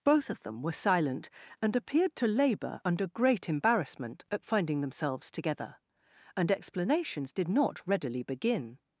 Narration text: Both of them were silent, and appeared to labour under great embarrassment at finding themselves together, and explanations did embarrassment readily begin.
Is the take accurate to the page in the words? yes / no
no